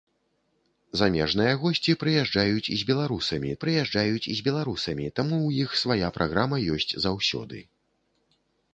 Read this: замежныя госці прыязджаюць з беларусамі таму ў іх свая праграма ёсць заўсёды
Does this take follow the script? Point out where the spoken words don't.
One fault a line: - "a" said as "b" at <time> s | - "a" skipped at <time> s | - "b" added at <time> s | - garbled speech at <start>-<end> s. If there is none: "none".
- "прыязджаюць з беларусамі" added at 3.6 s